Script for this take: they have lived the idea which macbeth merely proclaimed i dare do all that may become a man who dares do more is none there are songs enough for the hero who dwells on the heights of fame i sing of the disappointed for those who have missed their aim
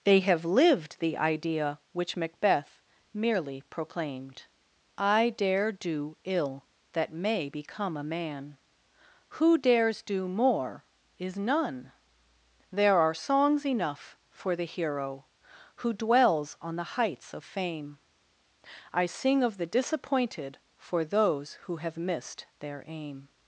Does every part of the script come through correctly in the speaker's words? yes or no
no